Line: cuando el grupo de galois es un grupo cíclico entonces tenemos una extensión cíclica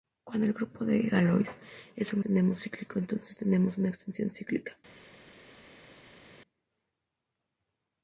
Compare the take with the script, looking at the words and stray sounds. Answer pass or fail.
fail